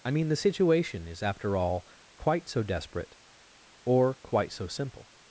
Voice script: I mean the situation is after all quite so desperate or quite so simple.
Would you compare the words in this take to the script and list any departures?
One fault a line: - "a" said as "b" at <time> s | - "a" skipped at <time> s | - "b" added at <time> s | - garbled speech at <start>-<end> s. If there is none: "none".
none